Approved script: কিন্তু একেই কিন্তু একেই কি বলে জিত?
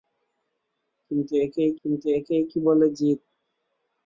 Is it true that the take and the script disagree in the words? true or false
false